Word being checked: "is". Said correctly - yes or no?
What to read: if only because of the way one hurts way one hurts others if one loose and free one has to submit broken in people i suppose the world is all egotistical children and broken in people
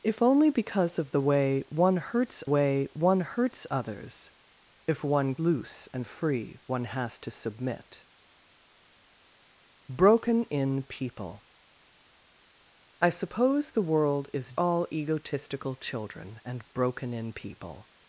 yes